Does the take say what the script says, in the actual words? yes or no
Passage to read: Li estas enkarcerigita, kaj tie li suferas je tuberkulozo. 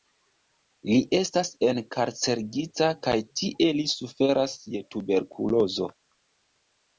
yes